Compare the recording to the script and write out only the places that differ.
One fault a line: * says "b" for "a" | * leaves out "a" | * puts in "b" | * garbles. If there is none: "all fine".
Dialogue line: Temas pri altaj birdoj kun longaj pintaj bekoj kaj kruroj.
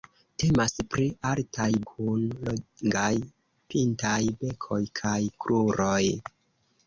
* leaves out "birdoj"